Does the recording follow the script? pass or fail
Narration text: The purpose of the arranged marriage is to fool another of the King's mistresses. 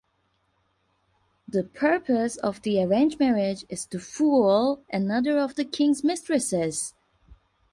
pass